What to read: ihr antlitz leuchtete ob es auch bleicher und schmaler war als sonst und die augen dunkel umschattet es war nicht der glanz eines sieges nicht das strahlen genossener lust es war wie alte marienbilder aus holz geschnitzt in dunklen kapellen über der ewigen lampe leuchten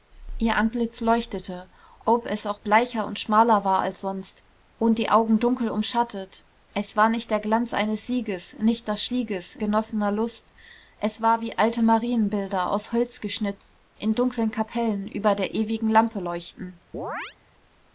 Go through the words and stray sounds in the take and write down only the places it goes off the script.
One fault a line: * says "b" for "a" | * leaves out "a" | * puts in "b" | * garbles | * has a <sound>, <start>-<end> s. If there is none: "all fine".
* says "sieges" for "strahlen"
* has a chirp, 16.9-17.4 s